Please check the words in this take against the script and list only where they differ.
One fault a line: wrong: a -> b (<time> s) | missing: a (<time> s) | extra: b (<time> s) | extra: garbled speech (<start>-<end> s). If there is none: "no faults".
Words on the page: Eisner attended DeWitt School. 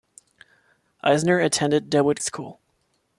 no faults